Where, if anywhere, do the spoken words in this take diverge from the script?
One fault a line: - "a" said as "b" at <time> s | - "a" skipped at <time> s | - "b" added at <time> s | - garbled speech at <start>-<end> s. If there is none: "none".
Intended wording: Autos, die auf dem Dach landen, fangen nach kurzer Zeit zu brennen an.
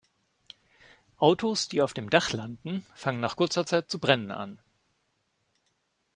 none